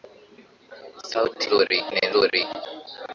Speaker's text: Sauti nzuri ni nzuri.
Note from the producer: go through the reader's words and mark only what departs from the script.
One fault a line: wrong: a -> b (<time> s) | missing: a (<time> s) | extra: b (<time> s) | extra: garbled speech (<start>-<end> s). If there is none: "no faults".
no faults